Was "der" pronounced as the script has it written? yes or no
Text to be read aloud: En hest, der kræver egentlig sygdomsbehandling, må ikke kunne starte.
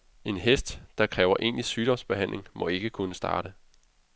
yes